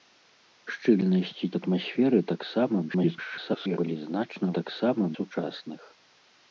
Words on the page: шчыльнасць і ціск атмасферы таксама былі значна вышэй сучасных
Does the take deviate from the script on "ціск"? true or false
true